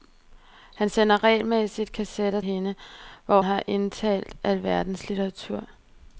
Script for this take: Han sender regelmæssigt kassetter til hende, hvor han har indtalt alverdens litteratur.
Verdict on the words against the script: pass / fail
fail